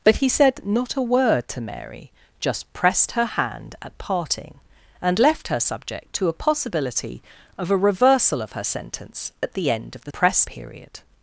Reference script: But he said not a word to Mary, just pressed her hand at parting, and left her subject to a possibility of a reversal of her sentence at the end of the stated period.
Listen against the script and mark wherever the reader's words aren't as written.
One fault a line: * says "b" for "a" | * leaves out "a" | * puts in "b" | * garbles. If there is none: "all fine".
* says "pressed" for "stated"